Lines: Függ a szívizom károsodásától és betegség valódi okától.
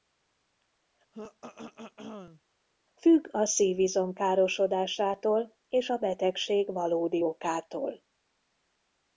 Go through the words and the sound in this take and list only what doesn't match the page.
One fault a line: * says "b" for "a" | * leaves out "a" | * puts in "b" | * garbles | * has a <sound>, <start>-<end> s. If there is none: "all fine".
* has a throat clearing, 1.1-2.4 s
* puts in "a"